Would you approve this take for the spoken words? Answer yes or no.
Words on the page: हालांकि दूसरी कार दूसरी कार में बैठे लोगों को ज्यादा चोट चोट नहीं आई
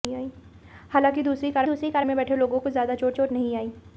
yes